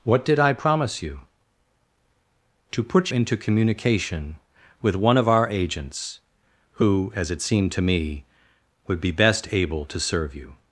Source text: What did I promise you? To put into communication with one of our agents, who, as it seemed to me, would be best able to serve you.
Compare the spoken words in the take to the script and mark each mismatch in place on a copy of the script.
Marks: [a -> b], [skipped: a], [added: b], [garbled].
What did I promise you? To put into communication with one of our agents, who, as it seemed to me, would be best able to serve you.